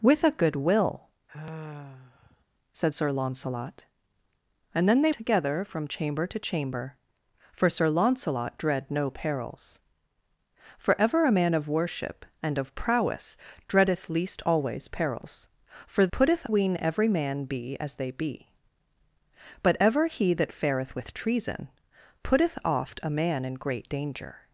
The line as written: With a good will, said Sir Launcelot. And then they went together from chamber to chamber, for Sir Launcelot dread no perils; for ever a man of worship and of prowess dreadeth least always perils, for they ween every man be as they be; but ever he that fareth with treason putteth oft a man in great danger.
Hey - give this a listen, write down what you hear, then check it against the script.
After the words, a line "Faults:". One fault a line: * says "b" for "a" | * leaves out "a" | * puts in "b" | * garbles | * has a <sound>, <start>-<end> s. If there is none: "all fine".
With a good will, said Sir Launcelot. And then they together from chamber to chamber, for Sir Launcelot dread no perils; for ever a man of worship and of prowess dreadeth least always perils, for putteth ween every man be as they be; but ever he that fareth with treason putteth oft a man in great danger.
Faults:
* has a sigh, 1.3-2.4 s
* leaves out "went"
* says "putteth" for "they"